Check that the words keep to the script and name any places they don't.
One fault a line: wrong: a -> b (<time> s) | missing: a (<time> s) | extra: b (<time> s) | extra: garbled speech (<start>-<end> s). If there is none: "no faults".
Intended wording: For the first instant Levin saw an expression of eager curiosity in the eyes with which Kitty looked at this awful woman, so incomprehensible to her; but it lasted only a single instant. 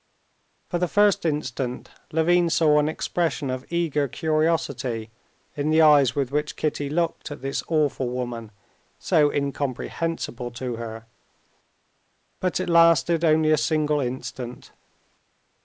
no faults